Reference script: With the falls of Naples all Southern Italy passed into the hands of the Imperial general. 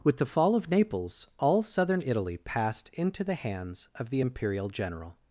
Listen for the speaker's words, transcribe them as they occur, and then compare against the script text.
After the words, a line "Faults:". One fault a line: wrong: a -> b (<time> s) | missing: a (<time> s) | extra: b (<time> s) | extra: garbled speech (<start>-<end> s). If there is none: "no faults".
With the fall of Naples all Southern Italy passed into the hands of the Imperial general.
Faults:
wrong: falls -> fall (0.2 s)